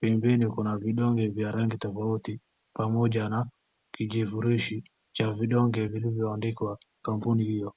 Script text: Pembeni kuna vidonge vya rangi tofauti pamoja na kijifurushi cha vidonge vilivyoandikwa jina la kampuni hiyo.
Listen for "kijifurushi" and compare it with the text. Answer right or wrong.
right